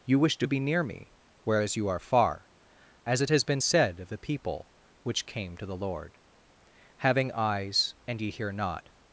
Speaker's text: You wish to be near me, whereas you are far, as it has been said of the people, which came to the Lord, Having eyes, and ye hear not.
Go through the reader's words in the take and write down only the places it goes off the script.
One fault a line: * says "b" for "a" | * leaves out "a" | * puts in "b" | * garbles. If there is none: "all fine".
all fine